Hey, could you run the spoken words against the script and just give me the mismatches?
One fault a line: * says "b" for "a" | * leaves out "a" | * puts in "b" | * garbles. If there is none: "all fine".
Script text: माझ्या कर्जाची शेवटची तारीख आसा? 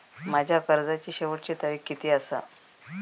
* puts in "किती"